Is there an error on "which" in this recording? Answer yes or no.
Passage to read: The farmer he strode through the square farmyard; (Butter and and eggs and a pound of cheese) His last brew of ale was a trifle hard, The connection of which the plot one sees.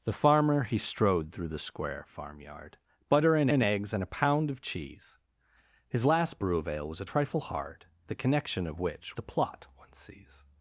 no